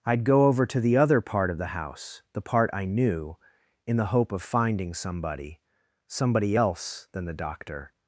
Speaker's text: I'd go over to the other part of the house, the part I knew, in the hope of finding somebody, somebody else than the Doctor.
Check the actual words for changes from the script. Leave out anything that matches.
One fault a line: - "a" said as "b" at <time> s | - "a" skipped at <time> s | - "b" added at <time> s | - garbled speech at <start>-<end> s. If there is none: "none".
none